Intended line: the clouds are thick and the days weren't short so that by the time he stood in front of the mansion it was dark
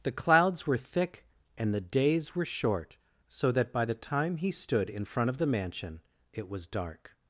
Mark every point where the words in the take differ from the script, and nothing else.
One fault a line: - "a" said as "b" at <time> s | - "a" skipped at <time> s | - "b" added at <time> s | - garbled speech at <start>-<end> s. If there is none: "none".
- "are" said as "were" at 0.7 s
- "weren't" said as "were" at 2.4 s